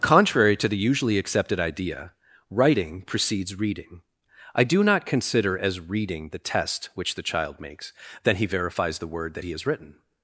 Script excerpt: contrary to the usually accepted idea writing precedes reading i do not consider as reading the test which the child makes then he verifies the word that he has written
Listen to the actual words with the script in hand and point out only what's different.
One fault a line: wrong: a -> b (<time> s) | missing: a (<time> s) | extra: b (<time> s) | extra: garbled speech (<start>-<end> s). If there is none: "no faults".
no faults